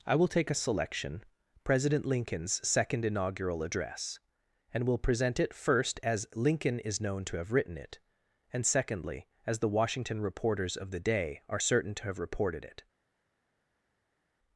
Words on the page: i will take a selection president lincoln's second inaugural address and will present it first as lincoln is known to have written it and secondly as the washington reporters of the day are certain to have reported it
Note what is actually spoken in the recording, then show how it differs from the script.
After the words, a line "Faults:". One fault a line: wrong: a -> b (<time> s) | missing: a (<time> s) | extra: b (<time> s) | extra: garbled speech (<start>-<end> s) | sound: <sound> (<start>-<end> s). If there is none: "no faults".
i will take a selection president lincoln's second inaugural address and will present it first as lincoln is known to have written it and secondly as the washington reporters of the day are certain to have reported it
Faults:
no faults